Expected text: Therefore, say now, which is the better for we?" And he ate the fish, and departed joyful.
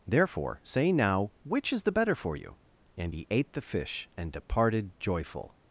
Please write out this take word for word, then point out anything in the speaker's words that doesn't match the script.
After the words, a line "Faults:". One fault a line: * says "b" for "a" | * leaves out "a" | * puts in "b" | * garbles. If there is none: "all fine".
Therefore, say now, which is the better for you?" And he ate the fish, and departed joyful.
Faults:
* says "you" for "we"